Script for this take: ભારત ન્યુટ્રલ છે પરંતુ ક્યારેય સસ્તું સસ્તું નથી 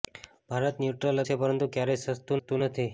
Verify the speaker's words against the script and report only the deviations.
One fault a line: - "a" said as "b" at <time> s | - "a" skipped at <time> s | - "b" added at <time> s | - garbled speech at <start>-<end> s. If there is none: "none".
none